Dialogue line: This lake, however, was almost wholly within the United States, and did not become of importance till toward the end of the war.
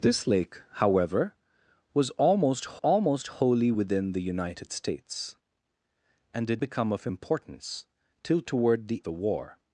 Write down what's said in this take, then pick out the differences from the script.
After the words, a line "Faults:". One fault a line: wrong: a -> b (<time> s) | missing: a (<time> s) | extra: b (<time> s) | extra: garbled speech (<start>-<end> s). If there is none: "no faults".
This lake, however, was almost almost wholly within the United States, and did become of importance till toward the the war.
Faults:
extra: almost (2.8 s)
missing: not (6.6 s)
missing: end of (9.0 s)